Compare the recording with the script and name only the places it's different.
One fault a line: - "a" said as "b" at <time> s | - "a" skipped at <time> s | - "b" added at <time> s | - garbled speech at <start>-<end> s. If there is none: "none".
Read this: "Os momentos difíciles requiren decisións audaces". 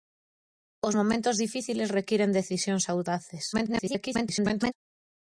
- garbled speech at 3.5-4.7 s